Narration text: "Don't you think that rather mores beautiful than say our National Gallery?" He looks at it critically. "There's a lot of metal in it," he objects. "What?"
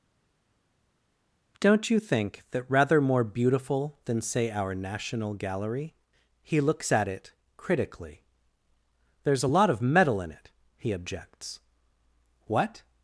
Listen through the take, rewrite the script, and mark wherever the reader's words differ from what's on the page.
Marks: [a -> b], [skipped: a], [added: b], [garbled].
"Don't you think that rather [mores -> more] beautiful than say our National Gallery?" He looks at it critically. "There's a lot of metal in it," he objects. "What?"